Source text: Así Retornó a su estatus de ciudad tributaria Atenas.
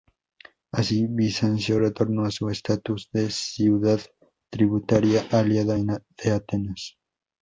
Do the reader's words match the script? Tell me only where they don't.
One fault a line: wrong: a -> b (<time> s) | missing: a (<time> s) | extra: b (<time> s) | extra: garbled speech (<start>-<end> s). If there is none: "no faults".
extra: Bizancio (1.1 s)
extra: aliada de (5.3 s)